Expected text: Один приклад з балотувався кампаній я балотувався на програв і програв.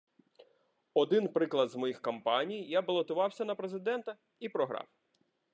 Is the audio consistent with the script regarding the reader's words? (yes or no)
no